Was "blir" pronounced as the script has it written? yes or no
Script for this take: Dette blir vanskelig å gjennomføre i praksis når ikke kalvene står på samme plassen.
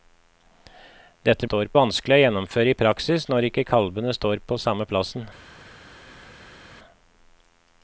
no